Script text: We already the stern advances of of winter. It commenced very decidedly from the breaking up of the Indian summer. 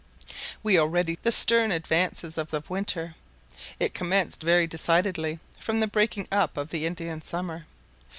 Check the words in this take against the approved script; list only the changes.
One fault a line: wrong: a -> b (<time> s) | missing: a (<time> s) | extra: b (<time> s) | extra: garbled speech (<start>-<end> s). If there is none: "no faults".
no faults